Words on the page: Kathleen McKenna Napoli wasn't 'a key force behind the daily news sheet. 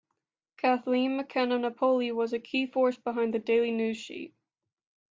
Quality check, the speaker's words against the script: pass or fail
fail